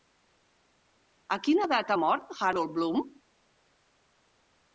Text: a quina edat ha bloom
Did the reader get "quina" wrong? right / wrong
right